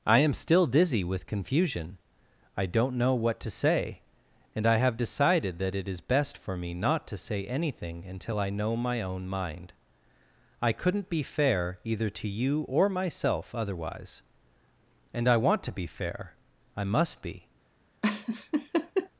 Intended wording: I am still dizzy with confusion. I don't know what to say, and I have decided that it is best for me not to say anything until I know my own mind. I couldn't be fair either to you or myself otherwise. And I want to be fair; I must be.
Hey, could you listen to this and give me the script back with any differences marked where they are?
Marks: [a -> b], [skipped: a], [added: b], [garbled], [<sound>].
I am still dizzy with confusion. I don't know what to say, and I have decided that it is best for me not to say anything until I know my own mind. I couldn't be fair either to you or myself otherwise. And I want to be fair; I must be. [laugh]